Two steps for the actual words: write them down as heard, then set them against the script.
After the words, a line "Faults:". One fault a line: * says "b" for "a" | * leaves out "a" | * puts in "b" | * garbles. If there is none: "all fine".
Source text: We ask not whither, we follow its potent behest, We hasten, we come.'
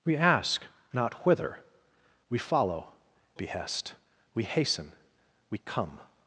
We ask not whither, we follow behest, We hasten, we come.'
Faults:
* leaves out "its potent"